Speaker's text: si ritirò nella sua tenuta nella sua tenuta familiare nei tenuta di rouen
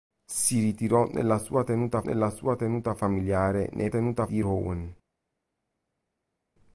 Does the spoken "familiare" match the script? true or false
true